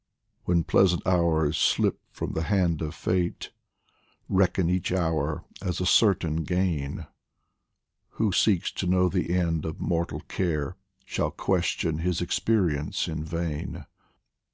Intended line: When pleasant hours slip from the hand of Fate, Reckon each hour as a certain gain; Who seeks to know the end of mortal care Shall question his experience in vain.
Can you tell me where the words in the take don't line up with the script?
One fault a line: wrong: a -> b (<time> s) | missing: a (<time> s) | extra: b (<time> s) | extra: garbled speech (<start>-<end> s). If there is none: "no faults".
no faults